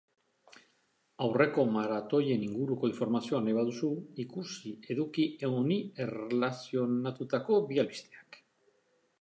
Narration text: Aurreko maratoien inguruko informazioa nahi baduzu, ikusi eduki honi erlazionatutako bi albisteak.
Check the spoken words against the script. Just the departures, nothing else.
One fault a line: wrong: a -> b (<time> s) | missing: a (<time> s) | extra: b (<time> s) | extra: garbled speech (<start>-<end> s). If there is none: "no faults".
no faults